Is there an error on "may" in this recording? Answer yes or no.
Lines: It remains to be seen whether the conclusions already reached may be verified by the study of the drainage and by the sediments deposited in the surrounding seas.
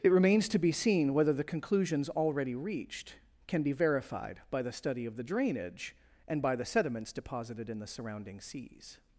yes